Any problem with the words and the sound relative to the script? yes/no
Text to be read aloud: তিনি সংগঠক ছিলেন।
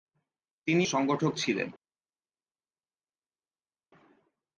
no